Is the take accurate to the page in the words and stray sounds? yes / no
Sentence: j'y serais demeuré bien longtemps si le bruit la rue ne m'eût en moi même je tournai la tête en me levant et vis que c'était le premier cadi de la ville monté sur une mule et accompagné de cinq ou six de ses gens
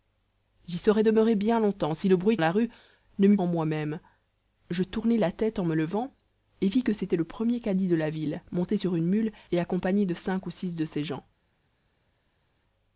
yes